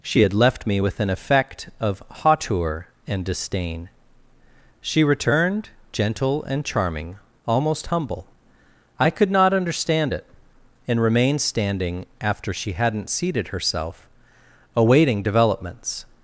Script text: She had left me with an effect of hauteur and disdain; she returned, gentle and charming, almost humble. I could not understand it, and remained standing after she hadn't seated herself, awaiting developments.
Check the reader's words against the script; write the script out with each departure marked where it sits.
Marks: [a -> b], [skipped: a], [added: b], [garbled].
She had left me with an effect of hauteur and disdain; she returned, gentle and charming, almost humble. I could not understand it, and remained standing after she hadn't seated herself, awaiting developments.